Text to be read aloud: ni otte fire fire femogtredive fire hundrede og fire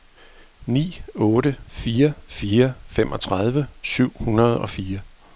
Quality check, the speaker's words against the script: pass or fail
fail